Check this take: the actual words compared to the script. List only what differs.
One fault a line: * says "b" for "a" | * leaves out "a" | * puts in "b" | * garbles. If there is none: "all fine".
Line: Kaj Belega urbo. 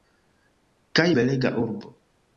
all fine